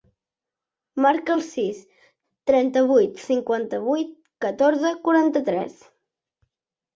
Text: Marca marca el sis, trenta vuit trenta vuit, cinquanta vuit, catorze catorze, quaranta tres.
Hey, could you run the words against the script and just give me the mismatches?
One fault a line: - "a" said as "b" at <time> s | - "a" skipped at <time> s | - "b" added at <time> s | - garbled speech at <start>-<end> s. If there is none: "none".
- "marca" skipped at 1.3 s
- "trenta vuit" skipped at 3.2 s
- "catorze" skipped at 4.9 s